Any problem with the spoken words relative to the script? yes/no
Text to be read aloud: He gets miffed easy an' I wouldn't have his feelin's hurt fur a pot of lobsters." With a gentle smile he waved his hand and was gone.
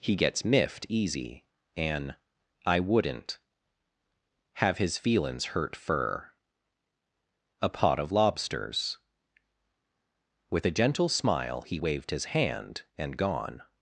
yes